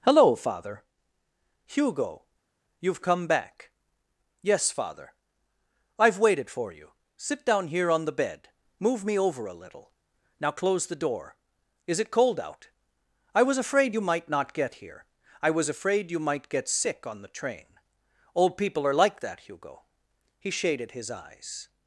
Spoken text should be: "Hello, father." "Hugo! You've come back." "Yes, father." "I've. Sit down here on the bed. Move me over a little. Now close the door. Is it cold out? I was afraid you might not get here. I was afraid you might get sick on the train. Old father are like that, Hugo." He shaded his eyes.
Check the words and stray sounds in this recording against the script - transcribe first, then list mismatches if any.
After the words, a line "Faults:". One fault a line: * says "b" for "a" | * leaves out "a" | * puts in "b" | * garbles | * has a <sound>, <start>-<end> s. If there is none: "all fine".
"Hello, father." "Hugo! You've come back." "Yes, father." "I've waited for you. Sit down here on the bed. Move me over a little. Now close the door. Is it cold out? I was afraid you might not get here. I was afraid you might get sick on the train. Old people are like that, Hugo." He shaded his eyes.
Faults:
* puts in "waited for you"
* says "people" for "father"